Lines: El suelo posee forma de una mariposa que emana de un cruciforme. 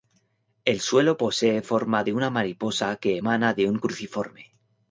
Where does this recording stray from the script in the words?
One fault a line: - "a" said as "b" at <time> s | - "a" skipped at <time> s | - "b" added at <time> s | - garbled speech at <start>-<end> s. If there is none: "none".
none